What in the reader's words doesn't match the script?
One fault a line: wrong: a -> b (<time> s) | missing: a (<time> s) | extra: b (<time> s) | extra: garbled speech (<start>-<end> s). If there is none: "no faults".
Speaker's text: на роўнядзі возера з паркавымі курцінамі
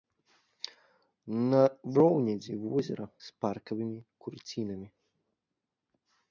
no faults